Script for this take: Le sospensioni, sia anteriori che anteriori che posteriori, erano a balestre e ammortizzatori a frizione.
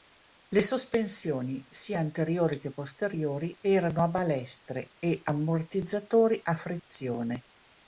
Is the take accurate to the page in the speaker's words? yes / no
no